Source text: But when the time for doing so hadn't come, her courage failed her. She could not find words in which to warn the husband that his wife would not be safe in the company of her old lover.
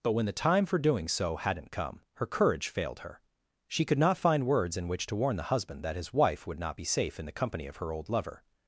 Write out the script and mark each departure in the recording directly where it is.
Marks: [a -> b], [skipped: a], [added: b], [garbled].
But when the time for doing so hadn't come, her courage failed her. She could not find words in which to warn the husband that his wife would not be safe in the company of her old lover.